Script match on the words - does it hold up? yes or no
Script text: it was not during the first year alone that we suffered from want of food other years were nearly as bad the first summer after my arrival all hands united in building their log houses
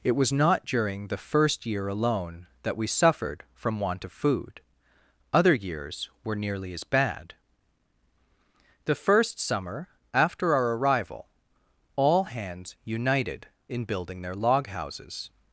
no